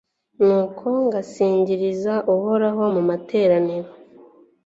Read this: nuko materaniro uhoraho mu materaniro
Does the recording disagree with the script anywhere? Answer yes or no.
yes